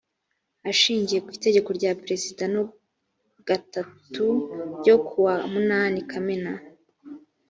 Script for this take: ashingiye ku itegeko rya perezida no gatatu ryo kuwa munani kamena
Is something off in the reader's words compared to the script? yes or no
no